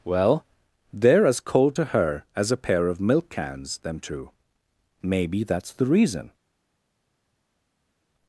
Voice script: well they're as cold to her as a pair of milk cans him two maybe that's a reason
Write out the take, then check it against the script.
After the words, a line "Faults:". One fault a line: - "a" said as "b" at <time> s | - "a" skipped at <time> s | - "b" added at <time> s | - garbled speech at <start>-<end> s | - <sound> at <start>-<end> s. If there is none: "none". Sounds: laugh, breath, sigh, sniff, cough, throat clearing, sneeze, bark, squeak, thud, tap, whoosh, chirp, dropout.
well they're as cold to her as a pair of milk cans them two maybe that's the reason
Faults:
- "him" said as "them" at 3.8 s
- "a" said as "the" at 5.7 s